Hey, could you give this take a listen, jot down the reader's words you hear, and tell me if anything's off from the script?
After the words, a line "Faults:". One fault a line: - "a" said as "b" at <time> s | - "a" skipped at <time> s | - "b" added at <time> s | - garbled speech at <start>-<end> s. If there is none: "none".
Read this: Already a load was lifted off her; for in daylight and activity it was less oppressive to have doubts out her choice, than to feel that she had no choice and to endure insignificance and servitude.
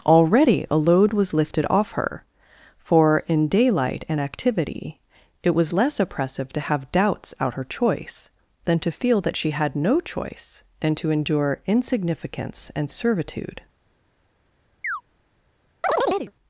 Already a load was lifted off her; for in daylight and activity it was less oppressive to have doubts out her choice, than to feel that she had no choice and to endure insignificance and servitude.
Faults:
none